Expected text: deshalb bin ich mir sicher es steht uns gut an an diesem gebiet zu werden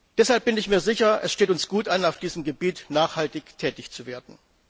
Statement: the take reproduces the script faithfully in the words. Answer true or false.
false